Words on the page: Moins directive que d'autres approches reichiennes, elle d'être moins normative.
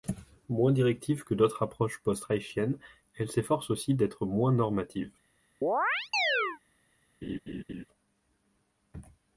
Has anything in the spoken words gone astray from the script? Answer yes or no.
yes